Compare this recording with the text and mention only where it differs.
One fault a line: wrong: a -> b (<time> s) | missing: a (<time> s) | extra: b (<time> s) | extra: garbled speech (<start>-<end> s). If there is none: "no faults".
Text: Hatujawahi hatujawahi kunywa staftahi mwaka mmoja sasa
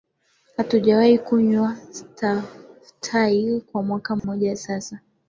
missing: hatujawahi (1.2 s)
extra: kwa (3.6 s)